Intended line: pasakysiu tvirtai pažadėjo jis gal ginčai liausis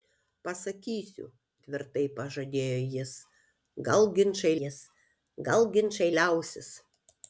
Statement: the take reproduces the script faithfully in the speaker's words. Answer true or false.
false